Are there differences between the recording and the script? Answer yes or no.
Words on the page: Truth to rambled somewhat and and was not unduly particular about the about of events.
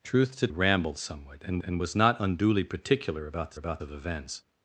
no